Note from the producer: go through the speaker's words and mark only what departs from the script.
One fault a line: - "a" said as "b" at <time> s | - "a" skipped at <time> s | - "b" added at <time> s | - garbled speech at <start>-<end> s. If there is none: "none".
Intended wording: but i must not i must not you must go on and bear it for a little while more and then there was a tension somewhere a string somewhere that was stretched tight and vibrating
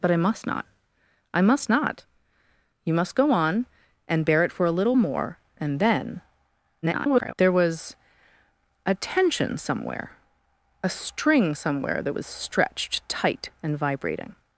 - "while" skipped at 5.0 s
- garbled speech at 6.8-7.3 s